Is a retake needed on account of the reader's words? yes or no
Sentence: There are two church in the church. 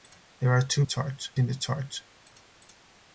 no